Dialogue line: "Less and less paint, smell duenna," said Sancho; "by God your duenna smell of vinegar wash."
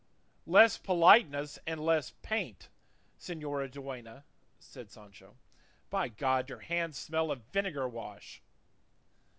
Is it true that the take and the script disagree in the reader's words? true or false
true